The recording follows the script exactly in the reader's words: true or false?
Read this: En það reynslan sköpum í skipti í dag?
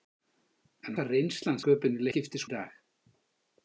true